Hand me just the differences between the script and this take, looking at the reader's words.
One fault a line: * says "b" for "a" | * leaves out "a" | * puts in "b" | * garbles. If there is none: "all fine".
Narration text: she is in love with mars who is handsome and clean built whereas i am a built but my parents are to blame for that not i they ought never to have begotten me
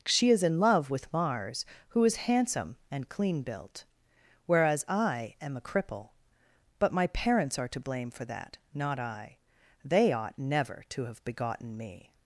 * says "cripple" for "built"